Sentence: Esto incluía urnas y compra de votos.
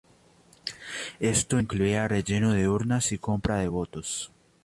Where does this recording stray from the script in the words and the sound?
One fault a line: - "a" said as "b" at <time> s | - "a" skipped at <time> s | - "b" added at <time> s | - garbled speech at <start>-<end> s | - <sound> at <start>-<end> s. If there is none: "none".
- "relleno de" added at 2.1 s